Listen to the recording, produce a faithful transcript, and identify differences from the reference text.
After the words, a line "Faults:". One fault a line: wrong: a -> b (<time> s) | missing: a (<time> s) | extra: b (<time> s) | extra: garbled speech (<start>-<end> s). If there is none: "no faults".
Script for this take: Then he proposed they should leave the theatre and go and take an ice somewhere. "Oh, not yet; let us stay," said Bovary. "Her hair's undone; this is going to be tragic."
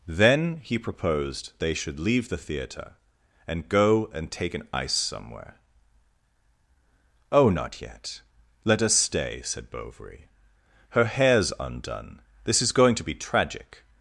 Then he proposed they should leave the theatre and go and take an ice somewhere. "Oh, not yet; let us stay," said Bovary. "Her hair's undone; this is going to be tragic."
Faults:
no faults